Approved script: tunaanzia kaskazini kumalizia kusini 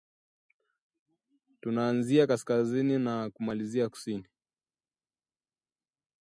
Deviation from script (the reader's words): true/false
true